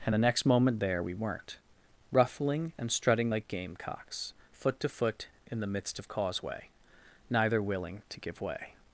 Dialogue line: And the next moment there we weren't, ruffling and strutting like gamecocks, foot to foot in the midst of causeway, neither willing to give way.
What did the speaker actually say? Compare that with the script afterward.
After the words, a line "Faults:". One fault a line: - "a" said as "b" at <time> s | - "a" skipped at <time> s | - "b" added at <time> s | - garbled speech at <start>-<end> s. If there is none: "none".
And the next moment there we weren't, ruffling and strutting like gamecocks, foot to foot in the midst of causeway, neither willing to give way.
Faults:
none